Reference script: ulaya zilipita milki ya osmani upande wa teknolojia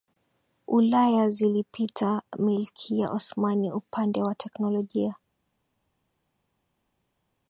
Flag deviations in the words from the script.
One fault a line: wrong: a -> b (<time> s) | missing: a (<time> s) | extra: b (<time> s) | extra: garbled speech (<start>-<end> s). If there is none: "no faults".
no faults